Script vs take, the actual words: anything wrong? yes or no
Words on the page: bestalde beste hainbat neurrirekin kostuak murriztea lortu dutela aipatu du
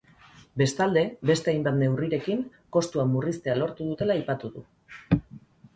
no